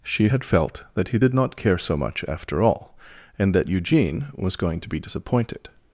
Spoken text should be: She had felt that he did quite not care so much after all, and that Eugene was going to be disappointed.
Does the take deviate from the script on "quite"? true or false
true